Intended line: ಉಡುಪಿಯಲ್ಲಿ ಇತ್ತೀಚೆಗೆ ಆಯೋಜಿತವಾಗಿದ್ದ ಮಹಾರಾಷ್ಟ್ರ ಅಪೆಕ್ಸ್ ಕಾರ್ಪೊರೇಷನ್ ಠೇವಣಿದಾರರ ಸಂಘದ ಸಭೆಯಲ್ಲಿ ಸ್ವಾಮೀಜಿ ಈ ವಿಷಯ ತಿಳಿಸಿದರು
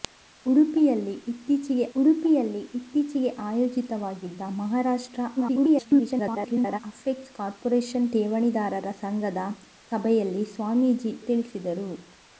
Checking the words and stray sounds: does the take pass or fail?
fail